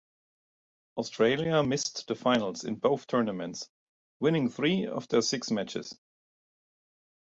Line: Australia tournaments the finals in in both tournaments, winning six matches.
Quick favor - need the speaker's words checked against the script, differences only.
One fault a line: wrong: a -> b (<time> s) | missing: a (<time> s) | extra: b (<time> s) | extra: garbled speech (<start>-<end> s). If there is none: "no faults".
wrong: tournaments -> missed (1.6 s)
missing: in (2.8 s)
extra: three of their (4.5 s)